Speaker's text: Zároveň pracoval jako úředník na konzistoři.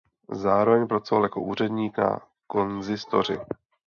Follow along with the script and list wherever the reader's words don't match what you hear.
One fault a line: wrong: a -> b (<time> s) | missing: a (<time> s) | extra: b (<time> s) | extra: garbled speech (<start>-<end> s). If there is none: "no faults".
no faults